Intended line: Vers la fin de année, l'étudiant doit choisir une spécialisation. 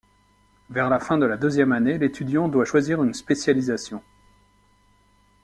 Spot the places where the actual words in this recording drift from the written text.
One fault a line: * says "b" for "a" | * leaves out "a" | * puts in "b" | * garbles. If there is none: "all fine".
* puts in "la deuxième"